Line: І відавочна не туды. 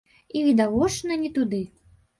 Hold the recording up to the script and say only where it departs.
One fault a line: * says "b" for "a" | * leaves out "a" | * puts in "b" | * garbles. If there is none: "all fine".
all fine